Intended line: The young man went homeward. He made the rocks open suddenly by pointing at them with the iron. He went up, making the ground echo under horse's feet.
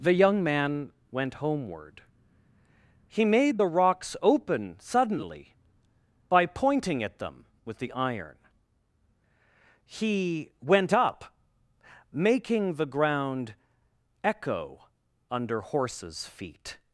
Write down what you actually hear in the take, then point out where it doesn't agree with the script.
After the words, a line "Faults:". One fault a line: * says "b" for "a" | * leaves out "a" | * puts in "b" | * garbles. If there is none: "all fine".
The young man went homeward. He made the rocks open suddenly by pointing at them with the iron. He went up, making the ground echo under horse's feet.
Faults:
all fine